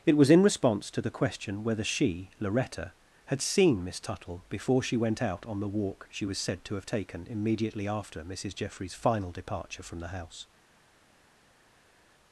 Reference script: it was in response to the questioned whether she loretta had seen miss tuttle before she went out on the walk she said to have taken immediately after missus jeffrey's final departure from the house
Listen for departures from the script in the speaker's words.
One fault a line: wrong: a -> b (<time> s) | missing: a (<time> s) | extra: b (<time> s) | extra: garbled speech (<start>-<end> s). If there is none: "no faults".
wrong: questioned -> question (1.1 s)
extra: was (6.2 s)